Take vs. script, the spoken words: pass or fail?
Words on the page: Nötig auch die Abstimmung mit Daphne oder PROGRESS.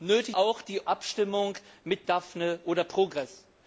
pass